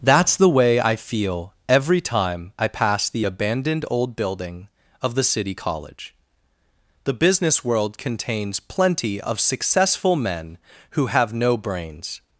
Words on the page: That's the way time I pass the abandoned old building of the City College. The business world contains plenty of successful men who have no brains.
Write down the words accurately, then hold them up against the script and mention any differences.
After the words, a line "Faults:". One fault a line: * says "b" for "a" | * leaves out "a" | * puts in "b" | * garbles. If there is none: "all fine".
That's the way I feel every time I pass the abandoned old building of the City College. The business world contains plenty of successful men who have no brains.
Faults:
* puts in "I feel every"